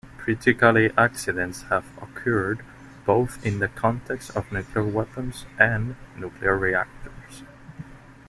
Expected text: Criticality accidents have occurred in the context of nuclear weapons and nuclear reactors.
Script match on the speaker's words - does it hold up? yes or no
no